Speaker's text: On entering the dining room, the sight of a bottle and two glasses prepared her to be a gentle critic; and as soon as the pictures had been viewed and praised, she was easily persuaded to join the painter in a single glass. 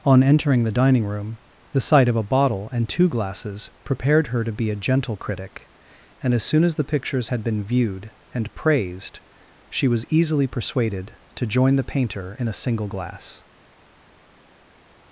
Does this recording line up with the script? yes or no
yes